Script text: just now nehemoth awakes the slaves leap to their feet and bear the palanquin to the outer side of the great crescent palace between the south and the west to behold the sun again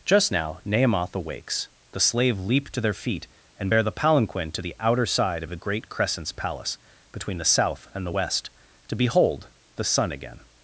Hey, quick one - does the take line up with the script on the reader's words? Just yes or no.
no